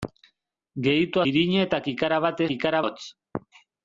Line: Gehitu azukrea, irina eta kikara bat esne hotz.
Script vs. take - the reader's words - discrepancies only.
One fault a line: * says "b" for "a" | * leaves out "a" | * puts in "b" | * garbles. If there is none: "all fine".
* leaves out "azukrea"
* says "kikara" for "esne"